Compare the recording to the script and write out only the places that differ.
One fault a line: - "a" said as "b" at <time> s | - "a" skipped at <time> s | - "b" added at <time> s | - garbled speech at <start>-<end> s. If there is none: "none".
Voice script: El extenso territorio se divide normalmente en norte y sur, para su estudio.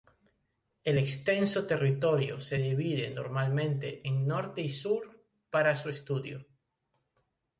none